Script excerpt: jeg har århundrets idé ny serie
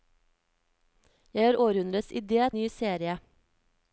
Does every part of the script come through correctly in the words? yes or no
yes